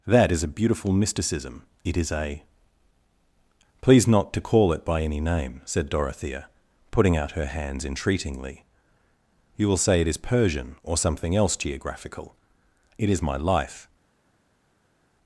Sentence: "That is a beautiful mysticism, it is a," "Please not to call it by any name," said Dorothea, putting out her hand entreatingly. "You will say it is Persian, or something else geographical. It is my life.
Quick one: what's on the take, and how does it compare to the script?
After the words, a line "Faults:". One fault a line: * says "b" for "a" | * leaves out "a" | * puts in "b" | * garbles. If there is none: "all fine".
"That is a beautiful mysticism, it is a," "Please not to call it by any name," said Dorothea, putting out her hands entreatingly. "You will say it is Persian, or something else geographical. It is my life.
Faults:
* says "hands" for "hand"